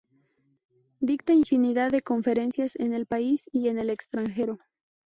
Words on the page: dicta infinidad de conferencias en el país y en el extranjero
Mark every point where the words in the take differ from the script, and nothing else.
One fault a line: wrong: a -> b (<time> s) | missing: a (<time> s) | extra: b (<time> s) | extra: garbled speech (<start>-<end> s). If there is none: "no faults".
no faults